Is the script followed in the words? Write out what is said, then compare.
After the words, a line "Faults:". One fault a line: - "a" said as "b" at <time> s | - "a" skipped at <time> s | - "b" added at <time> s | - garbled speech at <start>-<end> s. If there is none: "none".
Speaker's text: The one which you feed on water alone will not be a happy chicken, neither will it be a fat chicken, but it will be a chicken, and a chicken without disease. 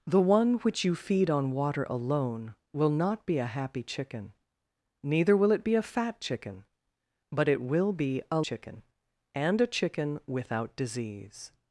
The one which you feed on water alone will not be a happy chicken, neither will it be a fat chicken, but it will be a chicken, and a chicken without disease.
Faults:
none